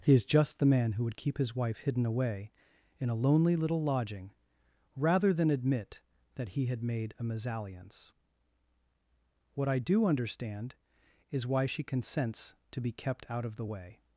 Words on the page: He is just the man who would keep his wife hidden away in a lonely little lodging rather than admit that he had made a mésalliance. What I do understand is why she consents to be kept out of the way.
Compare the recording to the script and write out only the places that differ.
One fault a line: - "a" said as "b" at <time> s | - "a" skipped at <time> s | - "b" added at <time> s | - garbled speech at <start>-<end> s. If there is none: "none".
none